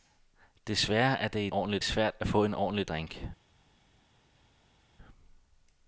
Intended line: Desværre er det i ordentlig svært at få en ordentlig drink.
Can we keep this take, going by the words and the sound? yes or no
yes